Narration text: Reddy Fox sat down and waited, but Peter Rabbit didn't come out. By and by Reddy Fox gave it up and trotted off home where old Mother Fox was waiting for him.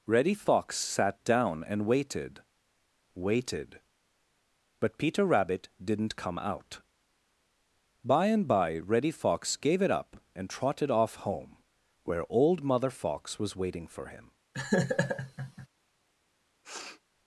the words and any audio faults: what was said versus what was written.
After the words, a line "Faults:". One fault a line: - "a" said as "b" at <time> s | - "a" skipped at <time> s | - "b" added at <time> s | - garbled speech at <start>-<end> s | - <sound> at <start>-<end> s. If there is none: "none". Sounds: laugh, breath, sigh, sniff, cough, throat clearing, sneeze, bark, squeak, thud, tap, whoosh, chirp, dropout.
Reddy Fox sat down and waited waited, but Peter Rabbit didn't come out. By and by Reddy Fox gave it up and trotted off home where old Mother Fox was waiting for him.
Faults:
- "waited" added at 3.1 s
- laugh at 14.5-15.7 s
- sniff at 16.6-17.0 s